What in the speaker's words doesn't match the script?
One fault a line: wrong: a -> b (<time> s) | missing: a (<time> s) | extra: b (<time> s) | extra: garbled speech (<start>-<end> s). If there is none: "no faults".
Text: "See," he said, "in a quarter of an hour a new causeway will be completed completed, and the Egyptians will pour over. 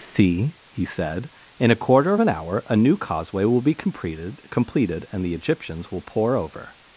no faults